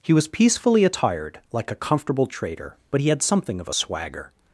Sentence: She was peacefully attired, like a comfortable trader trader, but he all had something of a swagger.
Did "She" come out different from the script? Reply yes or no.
yes